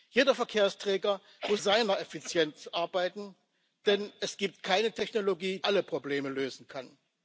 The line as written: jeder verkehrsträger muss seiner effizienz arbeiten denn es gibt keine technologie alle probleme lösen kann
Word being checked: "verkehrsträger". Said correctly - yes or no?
yes